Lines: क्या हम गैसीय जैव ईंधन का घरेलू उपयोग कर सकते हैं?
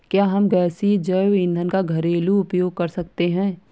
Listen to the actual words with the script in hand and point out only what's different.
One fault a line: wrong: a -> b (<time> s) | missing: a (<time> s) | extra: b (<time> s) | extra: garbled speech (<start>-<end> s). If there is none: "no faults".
no faults